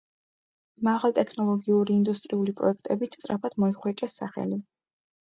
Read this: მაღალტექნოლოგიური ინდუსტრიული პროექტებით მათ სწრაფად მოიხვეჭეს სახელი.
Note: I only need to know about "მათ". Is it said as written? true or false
false